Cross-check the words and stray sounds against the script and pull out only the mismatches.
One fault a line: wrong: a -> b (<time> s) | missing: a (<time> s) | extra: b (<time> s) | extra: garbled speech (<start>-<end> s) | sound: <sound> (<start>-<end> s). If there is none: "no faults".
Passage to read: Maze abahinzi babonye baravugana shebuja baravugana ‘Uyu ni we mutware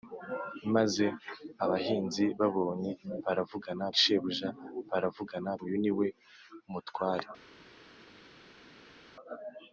no faults